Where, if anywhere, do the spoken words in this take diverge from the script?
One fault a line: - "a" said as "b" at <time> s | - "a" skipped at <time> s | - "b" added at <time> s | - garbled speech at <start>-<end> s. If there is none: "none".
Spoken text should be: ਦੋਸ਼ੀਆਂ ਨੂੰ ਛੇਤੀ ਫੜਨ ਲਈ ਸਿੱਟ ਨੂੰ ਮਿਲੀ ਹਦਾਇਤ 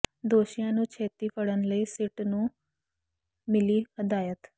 none